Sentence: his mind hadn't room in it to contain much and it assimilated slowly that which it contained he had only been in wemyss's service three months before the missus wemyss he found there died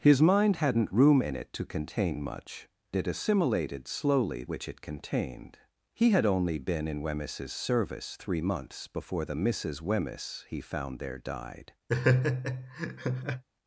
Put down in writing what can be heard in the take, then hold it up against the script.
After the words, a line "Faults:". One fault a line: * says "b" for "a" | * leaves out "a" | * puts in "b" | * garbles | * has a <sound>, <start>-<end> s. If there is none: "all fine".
his mind hadn't room in it to contain much it assimilated slowly which it contained he had only been in wemyss's service three months before the missus wemyss he found there died
Faults:
* leaves out "and"
* leaves out "that"
* has a laugh, 11.9-13.4 s